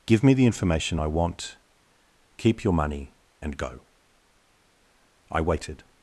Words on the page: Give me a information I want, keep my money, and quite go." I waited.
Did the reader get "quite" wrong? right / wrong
wrong